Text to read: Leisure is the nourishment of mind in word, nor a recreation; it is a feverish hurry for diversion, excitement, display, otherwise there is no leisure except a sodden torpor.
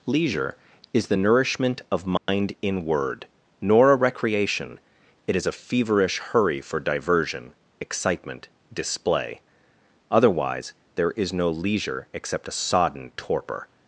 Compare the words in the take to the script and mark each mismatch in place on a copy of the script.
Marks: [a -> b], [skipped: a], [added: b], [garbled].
Leisure is the nourishment of mind in word, nor a recreation; it is a feverish hurry for diversion, excitement, display, otherwise there is no leisure except a sodden torpor.